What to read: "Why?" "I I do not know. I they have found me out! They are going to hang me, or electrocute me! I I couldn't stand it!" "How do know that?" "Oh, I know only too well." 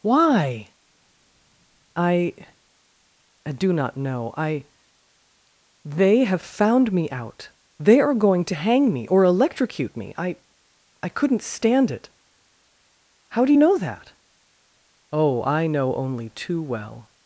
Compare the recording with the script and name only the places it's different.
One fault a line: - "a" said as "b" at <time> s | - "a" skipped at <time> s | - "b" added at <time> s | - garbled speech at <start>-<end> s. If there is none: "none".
none